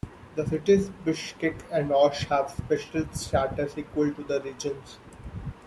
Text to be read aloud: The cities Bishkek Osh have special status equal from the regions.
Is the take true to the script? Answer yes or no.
no